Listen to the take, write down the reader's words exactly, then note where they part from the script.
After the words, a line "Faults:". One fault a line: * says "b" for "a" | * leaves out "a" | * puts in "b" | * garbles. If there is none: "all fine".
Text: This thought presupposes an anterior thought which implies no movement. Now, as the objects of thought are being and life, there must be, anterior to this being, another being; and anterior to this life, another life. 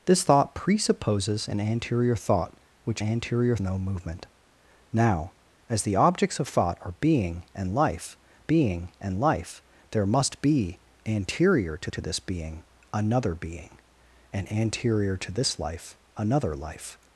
This thought presupposes an anterior thought which anterior no movement. Now, as the objects of thought are being and life being and life, there must be, anterior to to this being, another being; and anterior to this life, another life.
Faults:
* says "anterior" for "implies"
* puts in "being and life"
* puts in "to"